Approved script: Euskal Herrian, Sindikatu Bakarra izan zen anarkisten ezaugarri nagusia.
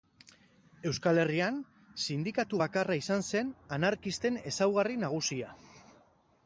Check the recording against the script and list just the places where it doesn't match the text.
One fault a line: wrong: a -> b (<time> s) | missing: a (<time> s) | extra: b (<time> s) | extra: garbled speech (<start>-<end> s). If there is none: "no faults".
no faults